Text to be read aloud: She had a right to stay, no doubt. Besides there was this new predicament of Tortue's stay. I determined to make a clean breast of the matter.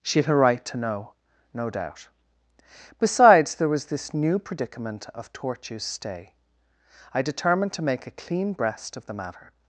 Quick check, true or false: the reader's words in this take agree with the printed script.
false